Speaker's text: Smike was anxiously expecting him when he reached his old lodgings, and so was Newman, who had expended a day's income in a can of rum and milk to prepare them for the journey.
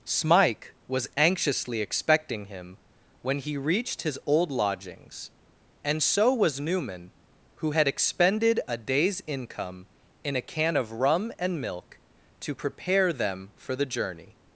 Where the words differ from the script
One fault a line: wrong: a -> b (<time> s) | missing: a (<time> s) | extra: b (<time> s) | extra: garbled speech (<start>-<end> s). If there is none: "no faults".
no faults